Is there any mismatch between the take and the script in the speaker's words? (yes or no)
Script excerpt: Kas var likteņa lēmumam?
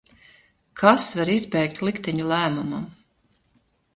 yes